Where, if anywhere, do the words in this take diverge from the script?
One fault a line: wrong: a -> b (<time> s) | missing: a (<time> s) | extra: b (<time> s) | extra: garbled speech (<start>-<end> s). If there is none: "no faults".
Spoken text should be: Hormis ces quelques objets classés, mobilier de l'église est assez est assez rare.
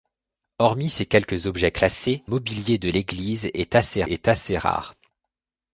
no faults